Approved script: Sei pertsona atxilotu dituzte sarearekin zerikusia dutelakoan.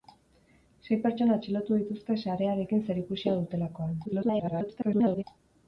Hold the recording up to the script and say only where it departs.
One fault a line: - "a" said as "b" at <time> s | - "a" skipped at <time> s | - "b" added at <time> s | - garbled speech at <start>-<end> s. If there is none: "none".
- garbled speech at 4.0-5.2 s